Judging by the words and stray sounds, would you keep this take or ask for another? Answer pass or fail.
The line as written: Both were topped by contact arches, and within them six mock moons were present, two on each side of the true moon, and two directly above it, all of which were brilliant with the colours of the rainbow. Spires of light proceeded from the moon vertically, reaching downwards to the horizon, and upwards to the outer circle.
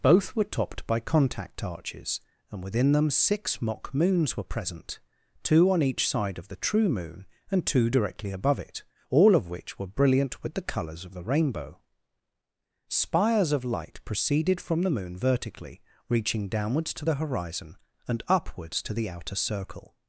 pass